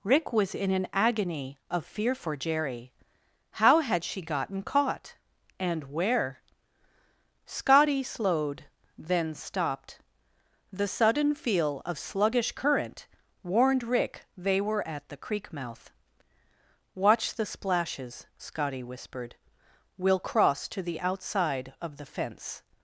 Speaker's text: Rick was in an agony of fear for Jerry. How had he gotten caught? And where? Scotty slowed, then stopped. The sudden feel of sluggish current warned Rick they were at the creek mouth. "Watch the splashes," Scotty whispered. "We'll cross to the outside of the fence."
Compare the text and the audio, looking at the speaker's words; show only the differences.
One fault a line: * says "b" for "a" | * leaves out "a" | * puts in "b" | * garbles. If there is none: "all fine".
* says "she" for "he"